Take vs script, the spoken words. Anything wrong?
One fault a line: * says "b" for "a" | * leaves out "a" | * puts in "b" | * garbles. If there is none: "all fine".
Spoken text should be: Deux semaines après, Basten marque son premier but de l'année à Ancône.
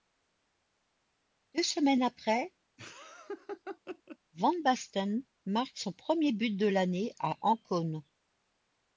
* puts in "van"